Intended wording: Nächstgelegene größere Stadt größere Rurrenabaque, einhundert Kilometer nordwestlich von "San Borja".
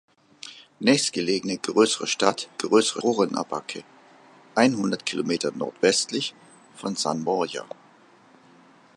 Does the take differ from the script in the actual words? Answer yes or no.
no